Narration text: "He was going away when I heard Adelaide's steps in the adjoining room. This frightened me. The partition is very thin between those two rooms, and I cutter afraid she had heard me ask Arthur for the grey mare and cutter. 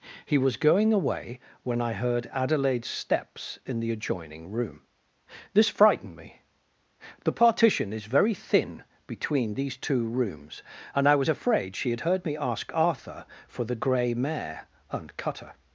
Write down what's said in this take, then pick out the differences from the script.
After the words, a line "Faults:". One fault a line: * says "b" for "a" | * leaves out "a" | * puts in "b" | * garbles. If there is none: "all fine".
"He was going away when I heard Adelaide's steps in the adjoining room. This frightened me. The partition is very thin between these two rooms, and I was afraid she had heard me ask Arthur for the grey mare and cutter.
Faults:
* says "these" for "those"
* says "was" for "cutter"